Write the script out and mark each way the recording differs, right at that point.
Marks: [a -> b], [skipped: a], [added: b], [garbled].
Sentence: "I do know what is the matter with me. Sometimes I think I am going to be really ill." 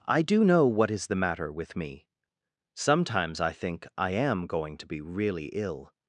"I do know what is the matter with me. Sometimes I think I am going to be really ill."